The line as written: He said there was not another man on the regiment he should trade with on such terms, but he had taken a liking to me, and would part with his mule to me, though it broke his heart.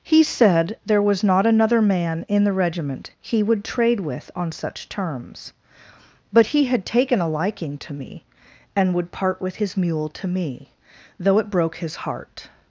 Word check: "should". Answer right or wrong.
wrong